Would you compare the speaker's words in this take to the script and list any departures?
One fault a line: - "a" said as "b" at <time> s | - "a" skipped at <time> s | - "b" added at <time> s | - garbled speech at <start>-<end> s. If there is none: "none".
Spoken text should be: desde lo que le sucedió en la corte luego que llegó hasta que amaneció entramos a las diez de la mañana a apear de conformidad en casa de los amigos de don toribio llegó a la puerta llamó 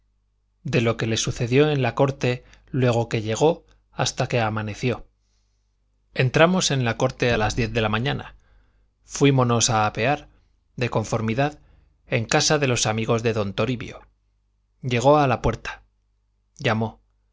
- "desde" said as "de" at 0.6 s
- "en la corte" added at 6.7 s
- "fuímonos" added at 9.0 s